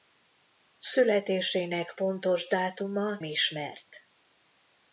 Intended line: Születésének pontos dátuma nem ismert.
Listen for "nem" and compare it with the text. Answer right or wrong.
wrong